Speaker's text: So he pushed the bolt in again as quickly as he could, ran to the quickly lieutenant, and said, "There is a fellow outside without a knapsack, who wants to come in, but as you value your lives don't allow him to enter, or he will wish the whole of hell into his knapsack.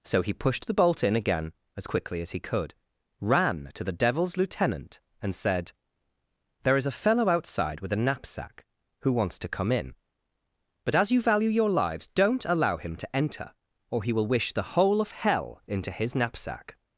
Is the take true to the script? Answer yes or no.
no